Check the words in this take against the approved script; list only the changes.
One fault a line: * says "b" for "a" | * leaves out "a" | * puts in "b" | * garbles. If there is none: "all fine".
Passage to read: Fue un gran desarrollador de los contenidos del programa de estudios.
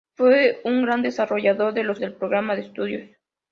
* leaves out "contenidos"